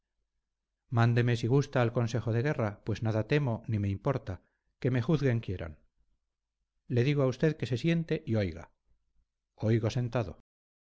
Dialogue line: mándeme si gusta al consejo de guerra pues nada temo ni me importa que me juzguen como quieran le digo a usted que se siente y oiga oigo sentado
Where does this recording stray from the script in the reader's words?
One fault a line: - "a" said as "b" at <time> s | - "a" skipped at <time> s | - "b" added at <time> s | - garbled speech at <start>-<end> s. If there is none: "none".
- "como" skipped at 5.4 s